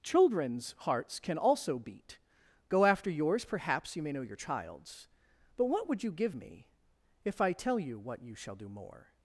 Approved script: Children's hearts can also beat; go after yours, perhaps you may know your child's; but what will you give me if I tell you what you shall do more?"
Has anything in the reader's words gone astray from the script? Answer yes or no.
yes